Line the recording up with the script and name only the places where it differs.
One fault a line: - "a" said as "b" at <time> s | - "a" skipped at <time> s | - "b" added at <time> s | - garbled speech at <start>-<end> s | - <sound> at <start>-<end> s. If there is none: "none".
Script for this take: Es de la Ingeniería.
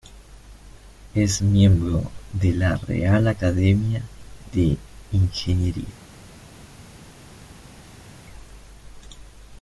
- "miembro" added at 1.4 s
- "Real Academia de" added at 2.8 s